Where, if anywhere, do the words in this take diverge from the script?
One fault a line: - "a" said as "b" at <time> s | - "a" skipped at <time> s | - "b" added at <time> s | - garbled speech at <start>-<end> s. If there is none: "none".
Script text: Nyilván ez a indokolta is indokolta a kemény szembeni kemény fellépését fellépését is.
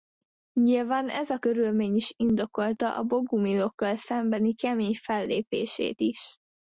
- "indokolta" said as "körülmény" at 1.4 s
- "kemény" said as "bogumilokkal" at 3.0 s
- "fellépését" skipped at 6.0 s